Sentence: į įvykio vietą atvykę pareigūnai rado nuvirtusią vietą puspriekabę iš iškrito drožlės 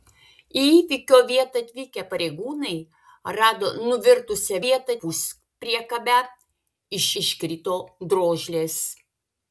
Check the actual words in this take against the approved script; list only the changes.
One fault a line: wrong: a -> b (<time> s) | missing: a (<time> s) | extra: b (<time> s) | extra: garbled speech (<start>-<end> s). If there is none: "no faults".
no faults